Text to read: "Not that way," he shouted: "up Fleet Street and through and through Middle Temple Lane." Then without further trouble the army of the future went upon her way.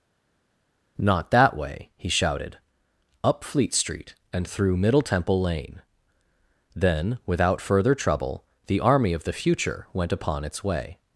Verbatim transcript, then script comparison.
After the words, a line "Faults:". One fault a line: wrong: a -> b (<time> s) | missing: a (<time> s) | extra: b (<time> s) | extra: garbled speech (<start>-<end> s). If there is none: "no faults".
"Not that way," he shouted: "up Fleet Street and through Middle Temple Lane." Then without further trouble the army of the future went upon its way.
Faults:
missing: and through (4.8 s)
wrong: her -> its (10.4 s)